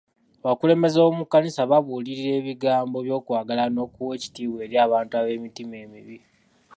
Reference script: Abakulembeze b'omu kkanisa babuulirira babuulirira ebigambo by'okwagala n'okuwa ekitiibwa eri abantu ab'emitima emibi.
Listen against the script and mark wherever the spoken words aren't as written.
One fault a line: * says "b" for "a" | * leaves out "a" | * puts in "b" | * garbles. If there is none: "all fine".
* leaves out "babuulirira"